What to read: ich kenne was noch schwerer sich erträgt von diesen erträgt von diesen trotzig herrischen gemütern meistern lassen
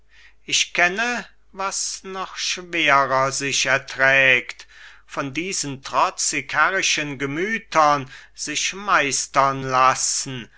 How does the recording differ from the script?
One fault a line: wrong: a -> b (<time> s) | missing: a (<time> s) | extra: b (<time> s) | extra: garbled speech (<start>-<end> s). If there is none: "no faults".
missing: erträgt von diesen (5.8 s)
extra: sich (8.4 s)